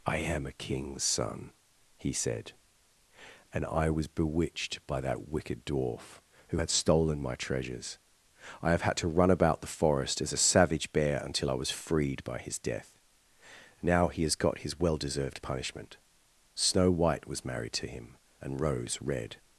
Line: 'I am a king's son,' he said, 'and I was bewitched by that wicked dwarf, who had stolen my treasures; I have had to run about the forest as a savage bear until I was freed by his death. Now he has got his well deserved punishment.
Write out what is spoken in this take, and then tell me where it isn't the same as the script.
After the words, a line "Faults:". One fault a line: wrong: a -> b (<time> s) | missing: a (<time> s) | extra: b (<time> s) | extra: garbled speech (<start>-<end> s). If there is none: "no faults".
'I am a king's son,' he said, 'and I was bewitched by that wicked dwarf, who had stolen my treasures; I have had to run about the forest as a savage bear until I was freed by his death. Now he has got his well deserved punishment. Snow white was married to him, and Rose red
Faults:
extra: Snow white was married to him and Rose red (16.5 s)